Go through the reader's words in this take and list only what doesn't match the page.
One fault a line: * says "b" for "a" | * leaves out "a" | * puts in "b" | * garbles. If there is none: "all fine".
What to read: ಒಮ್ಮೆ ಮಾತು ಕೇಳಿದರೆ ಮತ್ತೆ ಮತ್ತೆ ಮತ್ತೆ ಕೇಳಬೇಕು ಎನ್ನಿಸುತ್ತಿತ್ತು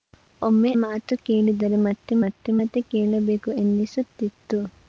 all fine